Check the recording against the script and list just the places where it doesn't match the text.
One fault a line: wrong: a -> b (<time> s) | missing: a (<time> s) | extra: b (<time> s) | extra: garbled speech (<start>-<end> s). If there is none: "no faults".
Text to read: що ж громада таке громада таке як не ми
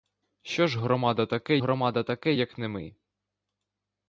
no faults